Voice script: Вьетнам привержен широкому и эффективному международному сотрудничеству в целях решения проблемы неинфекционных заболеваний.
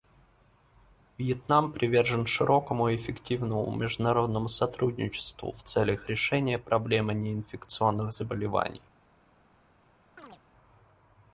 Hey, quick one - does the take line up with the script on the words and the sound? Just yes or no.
no